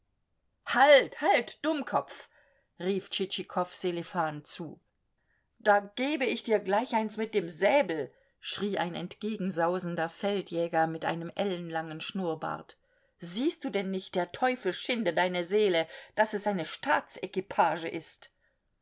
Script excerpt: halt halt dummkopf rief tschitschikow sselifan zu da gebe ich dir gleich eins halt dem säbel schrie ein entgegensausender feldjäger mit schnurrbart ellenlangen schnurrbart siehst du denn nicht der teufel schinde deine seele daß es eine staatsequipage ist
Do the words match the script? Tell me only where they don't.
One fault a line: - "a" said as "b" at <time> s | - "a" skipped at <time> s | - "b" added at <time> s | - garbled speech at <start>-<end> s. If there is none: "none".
- "halt" said as "mit" at 7.2 s
- "schnurrbart" said as "einem" at 11.0 s